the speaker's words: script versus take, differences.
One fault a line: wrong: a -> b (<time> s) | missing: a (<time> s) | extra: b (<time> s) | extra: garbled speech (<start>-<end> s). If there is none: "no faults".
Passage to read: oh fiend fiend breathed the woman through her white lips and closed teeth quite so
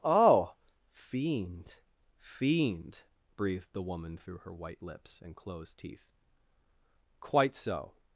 no faults